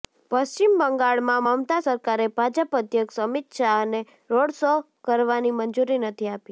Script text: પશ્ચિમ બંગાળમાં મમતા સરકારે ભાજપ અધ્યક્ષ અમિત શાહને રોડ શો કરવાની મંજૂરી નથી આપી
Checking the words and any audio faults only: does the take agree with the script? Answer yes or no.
yes